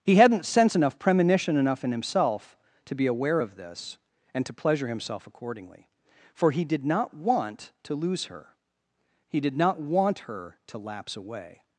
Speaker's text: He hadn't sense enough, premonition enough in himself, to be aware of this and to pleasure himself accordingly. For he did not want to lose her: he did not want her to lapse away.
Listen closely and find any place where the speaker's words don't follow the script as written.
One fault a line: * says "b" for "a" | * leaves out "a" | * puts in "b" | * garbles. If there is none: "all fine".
all fine